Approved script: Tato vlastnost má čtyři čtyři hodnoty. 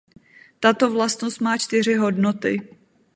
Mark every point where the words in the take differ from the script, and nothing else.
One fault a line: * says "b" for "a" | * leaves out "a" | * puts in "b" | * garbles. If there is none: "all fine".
* leaves out "čtyři"